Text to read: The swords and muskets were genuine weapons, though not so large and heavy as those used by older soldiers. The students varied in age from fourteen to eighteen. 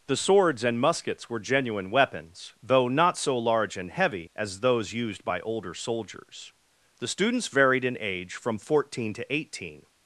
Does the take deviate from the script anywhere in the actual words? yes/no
no